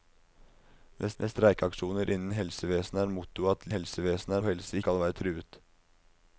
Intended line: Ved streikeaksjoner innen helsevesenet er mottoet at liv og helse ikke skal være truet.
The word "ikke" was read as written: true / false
false